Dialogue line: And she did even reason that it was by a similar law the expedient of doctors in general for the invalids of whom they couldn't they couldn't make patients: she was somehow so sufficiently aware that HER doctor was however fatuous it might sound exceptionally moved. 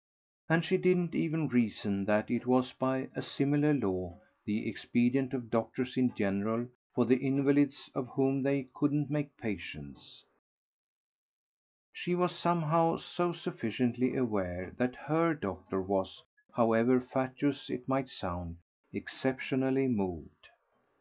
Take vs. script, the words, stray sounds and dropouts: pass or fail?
fail